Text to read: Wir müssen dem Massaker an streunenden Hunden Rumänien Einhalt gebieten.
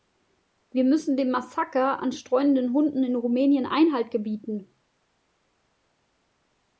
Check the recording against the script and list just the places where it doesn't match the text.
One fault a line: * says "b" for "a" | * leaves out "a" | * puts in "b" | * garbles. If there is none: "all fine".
* puts in "in"